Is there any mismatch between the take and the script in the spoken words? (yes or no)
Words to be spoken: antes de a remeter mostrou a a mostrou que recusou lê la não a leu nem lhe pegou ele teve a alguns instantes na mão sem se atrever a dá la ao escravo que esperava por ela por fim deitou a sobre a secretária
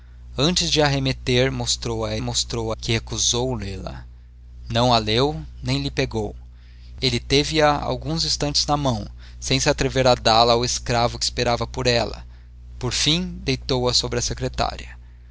no